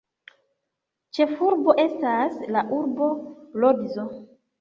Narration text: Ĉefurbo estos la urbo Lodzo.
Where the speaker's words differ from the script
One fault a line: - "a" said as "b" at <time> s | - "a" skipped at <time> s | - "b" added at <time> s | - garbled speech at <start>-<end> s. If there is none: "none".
- "estos" said as "estas" at 1.8 s